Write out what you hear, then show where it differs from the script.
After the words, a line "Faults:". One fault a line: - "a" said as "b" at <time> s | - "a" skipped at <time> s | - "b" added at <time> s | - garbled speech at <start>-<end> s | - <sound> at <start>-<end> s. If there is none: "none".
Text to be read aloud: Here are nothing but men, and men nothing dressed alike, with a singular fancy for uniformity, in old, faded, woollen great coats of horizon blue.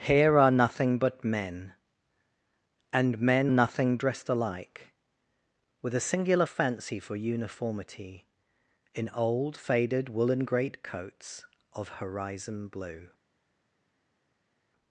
Here are nothing but men, and men nothing dressed alike, with a singular fancy for uniformity, in old, faded, woollen great coats of horizon blue.
Faults:
none